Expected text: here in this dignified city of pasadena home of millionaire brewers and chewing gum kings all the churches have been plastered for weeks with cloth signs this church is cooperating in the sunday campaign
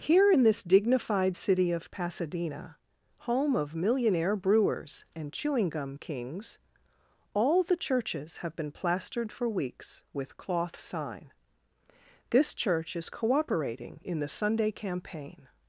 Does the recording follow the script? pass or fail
fail